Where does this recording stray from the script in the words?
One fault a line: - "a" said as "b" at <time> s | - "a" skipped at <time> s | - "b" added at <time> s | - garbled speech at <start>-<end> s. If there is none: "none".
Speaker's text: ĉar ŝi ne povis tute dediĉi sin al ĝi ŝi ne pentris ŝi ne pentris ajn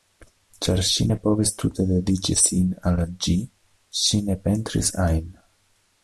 - "ŝi ne pentris" skipped at 4.9 s